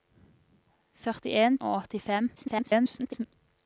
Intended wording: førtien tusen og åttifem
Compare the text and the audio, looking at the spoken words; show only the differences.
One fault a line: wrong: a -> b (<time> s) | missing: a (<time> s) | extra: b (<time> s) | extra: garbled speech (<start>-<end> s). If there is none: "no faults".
missing: tusen (1.6 s)
extra: garbled speech (2.4-3.3 s)